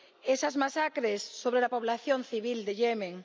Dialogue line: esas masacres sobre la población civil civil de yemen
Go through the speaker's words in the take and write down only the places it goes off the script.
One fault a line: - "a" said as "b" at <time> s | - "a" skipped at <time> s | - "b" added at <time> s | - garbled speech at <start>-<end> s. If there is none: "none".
- "civil" skipped at 2.6 s